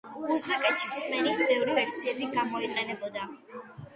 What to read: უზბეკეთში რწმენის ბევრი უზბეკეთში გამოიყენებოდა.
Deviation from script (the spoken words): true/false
true